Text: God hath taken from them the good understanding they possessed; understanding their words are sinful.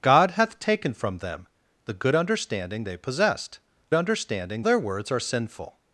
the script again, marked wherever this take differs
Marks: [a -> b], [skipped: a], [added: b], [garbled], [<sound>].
God hath taken from them the good understanding they possessed; understanding their words are sinful.